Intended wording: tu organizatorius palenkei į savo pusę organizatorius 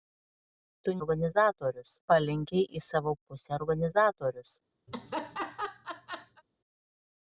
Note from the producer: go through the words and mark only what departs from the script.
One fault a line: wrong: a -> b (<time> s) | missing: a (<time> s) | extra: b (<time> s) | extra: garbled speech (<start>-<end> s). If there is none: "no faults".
no faults